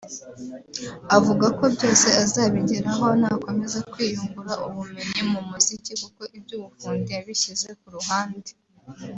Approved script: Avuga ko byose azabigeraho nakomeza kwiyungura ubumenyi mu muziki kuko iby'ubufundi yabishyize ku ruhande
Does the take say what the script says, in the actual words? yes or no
yes